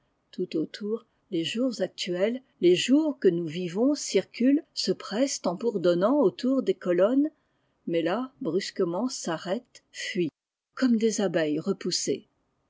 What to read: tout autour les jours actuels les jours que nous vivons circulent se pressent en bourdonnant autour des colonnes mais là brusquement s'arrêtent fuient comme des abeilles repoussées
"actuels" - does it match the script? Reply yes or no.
yes